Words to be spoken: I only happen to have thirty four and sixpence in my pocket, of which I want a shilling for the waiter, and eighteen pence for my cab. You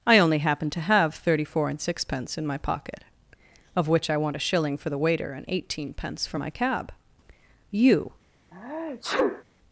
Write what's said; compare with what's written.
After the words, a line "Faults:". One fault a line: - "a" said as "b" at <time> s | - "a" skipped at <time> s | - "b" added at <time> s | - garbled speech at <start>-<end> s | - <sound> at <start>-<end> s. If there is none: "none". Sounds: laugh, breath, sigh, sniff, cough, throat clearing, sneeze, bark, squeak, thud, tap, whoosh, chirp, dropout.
I only happen to have thirty four and sixpence in my pocket, of which I want a shilling for the waiter, and eighteen pence for my cab. You
Faults:
- sneeze at 8.5-9.4 s